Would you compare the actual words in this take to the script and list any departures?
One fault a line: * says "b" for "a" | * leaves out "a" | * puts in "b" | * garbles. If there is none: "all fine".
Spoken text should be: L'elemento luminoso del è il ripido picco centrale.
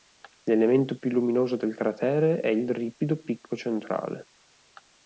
* puts in "più"
* puts in "cratere"